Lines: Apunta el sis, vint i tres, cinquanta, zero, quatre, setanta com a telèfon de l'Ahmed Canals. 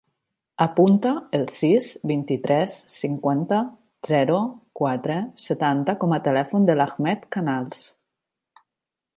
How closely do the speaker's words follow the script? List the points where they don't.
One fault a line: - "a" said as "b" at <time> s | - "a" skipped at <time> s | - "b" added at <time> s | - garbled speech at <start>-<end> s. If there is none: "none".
none